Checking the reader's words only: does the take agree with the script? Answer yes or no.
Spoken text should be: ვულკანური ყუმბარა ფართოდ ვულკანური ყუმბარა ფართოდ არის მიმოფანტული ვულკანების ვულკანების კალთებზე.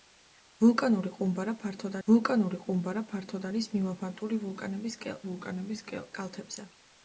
yes